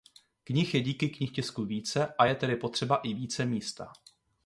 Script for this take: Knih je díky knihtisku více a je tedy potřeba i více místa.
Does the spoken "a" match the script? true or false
true